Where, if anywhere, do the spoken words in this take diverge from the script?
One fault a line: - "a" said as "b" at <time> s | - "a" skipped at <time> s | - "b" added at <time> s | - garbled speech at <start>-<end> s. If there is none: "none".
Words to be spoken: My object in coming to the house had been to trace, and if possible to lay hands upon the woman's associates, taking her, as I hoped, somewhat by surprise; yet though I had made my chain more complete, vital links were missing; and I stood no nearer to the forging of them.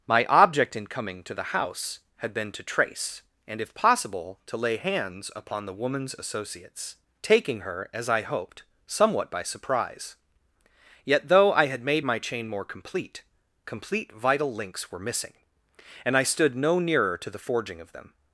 - "complete" added at 13.7 s